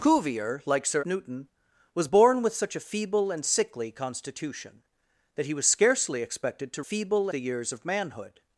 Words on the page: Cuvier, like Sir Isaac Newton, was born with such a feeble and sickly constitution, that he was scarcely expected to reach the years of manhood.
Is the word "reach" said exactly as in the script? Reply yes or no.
no